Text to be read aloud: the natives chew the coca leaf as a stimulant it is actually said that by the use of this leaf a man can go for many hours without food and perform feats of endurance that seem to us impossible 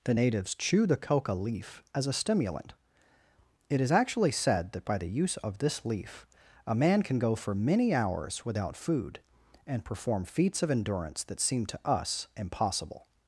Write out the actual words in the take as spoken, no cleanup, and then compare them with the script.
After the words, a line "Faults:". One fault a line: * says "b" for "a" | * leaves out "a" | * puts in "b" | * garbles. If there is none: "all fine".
the natives chew the coca leaf as a stimulant it is actually said that by the use of this leaf a man can go for many hours without food and perform feats of endurance that seem to us impossible
Faults:
all fine